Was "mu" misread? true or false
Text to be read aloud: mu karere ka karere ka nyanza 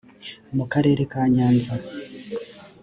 false